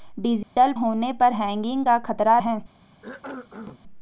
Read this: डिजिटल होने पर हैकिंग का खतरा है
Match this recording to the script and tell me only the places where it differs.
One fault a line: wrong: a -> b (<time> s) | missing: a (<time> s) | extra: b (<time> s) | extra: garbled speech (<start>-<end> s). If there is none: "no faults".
no faults